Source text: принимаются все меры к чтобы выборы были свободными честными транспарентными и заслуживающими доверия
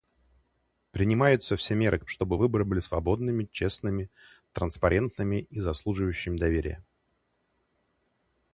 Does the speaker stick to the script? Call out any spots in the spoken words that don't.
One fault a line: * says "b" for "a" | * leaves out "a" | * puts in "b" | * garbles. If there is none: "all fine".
all fine